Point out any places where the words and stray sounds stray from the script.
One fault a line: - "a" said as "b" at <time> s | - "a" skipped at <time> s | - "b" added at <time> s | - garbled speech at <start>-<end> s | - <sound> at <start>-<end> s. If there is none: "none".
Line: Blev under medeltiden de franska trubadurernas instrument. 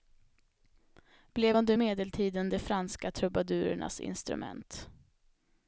none